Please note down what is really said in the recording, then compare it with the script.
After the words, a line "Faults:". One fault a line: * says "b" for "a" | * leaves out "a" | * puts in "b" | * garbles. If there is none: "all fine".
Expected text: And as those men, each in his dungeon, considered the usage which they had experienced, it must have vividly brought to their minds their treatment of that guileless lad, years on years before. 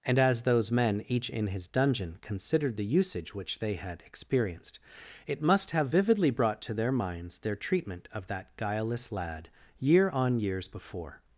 And as those men, each in his dungeon, considered the usage which they had experienced, it must have vividly brought to their minds their treatment of that guileless lad, year on years before.
Faults:
* says "year" for "years"